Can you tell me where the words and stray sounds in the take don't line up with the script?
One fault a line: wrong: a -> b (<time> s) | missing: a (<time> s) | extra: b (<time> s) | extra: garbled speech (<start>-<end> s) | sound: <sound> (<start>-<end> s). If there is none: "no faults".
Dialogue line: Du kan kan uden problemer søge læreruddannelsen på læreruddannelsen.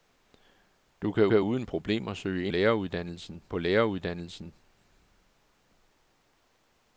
no faults